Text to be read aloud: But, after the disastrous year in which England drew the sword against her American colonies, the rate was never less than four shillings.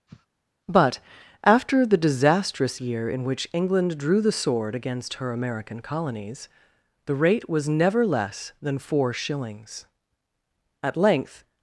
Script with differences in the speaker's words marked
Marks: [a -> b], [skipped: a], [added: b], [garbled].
But, after the disastrous year in which England drew the sword against her American colonies, the rate was never less than four shillings. [added: At length]